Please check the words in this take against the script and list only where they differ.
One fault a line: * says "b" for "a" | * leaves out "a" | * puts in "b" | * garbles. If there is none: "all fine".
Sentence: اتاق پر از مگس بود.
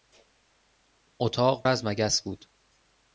* leaves out "پر"